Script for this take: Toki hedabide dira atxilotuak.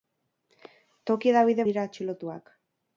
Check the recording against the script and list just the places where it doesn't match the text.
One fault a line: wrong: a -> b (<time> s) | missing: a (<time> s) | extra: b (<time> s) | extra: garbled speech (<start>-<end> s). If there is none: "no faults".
no faults